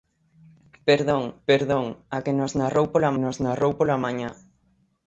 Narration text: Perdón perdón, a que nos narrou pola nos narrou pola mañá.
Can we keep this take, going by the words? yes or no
yes